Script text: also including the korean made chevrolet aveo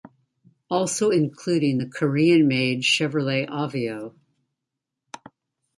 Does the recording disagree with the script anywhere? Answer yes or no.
no